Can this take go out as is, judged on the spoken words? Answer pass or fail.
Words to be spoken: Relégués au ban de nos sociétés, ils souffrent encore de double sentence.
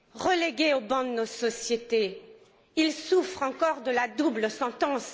fail